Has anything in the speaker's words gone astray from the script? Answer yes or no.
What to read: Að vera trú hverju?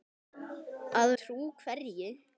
yes